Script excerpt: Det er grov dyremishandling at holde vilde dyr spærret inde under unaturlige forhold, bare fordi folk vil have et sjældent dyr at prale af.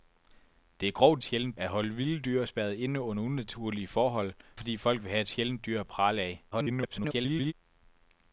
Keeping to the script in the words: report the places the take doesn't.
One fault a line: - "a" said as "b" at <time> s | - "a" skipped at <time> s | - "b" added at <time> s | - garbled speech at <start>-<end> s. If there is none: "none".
- "dyremishandling" said as "sjældent" at 1.2 s
- "bare" skipped at 4.3 s
- garbled speech at 6.5-7.5 s